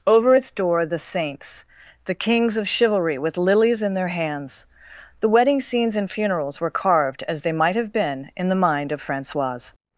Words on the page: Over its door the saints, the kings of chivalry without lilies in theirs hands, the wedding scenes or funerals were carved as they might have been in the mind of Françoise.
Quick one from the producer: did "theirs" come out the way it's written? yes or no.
no